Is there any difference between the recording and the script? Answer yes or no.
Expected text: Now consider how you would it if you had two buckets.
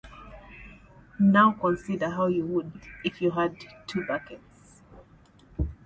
no